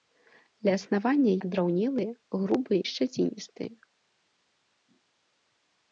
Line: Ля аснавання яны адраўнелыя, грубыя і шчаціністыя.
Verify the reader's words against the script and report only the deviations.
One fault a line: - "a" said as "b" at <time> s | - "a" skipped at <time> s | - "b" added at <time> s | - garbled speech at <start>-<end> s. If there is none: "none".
- "яны" skipped at 1.3 s
- "і" skipped at 2.8 s